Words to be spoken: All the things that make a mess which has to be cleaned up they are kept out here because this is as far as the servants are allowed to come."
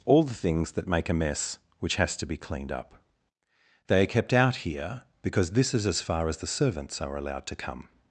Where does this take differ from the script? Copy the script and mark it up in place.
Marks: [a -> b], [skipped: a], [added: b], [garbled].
All the things that make a mess which has to be cleaned up they are kept out here because this is as far as the servants are allowed to come."